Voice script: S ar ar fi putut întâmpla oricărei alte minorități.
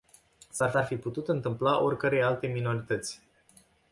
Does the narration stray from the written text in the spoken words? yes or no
no